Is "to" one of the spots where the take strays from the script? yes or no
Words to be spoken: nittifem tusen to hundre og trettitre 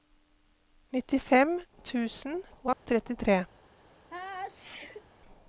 yes